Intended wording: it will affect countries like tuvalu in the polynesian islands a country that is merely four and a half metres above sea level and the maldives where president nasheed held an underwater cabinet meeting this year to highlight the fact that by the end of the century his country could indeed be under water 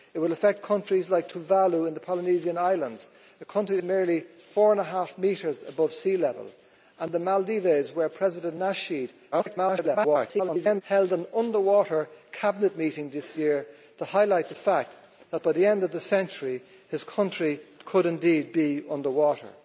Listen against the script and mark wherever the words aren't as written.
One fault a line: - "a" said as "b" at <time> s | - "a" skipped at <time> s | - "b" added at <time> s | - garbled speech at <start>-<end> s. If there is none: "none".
- "that is" skipped at 3.8 s
- garbled speech at 9.3-10.8 s